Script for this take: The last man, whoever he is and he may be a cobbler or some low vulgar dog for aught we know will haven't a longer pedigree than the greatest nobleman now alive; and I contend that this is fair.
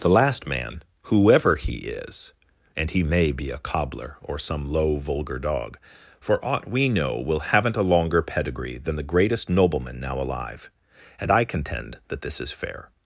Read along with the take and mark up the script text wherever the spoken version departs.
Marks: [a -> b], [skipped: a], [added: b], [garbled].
The last man, whoever he is and he may be a cobbler or some low vulgar dog for aught we know will haven't a longer pedigree than the greatest nobleman now alive; and I contend that this is fair.